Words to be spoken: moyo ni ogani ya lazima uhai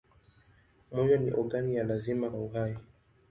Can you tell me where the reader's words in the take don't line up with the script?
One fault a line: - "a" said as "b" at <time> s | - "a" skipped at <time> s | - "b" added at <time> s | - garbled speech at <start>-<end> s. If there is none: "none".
none